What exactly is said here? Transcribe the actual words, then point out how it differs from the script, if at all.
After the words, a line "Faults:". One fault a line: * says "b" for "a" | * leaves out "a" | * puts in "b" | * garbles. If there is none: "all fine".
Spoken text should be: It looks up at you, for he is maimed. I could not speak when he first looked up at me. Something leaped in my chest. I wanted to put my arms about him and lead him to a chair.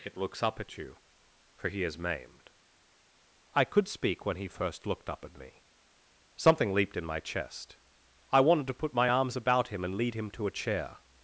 It looks up at you, for he is maimed. I could speak when he first looked up at me. Something leaped in my chest. I wanted to put my arms about him and lead him to a chair.
Faults:
* leaves out "not"